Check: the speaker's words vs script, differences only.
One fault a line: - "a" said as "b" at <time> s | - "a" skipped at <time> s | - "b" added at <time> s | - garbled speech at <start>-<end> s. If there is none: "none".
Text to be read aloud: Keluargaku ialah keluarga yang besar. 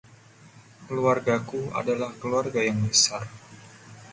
- "ialah" said as "adalah" at 1.8 s